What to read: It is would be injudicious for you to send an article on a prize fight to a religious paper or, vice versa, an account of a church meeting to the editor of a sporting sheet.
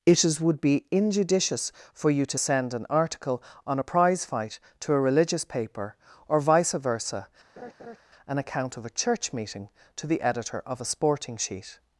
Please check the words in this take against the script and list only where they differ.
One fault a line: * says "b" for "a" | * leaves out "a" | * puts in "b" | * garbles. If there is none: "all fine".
all fine